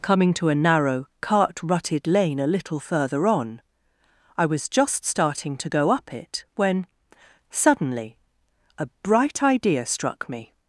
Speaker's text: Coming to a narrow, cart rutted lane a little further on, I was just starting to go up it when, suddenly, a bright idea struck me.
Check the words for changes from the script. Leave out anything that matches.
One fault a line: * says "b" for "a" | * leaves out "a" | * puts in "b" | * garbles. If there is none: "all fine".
all fine